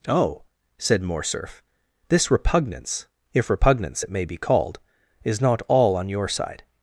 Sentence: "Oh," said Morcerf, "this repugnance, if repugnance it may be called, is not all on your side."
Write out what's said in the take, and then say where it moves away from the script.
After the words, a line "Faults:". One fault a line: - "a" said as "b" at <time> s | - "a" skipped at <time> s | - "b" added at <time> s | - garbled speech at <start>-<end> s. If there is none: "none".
"Oh," said Morcerf, "this repugnance, if repugnance it may be called, is not all on your side."
Faults:
none